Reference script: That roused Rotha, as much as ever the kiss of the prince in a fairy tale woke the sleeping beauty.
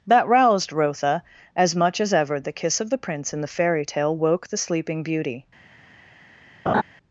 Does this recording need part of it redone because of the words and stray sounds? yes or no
yes